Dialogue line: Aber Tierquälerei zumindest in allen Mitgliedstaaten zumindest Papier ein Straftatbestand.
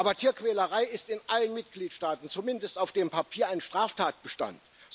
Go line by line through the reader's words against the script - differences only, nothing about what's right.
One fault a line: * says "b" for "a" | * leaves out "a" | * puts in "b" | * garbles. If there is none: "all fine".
* says "ist" for "zumindest"
* puts in "auf dem"